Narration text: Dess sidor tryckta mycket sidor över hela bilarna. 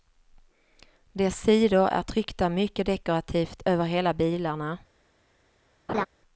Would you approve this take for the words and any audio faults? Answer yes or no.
no